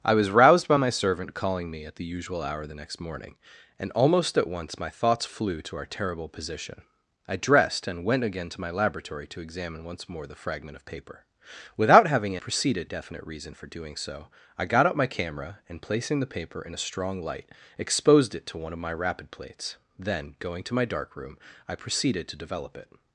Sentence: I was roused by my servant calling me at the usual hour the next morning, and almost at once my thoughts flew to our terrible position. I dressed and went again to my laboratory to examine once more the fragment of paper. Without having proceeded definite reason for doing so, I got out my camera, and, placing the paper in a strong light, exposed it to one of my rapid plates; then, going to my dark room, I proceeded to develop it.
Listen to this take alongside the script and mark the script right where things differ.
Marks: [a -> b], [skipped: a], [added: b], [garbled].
I was roused by my servant calling me at the usual hour the next morning, and almost at once my thoughts flew to our terrible position. I dressed and went again to my laboratory to examine once more the fragment of paper. Without having proceeded definite reason for doing so, I got out my camera, and, placing the paper in a strong light, exposed it to one of my rapid plates; then, going to my dark room, I proceeded to develop it.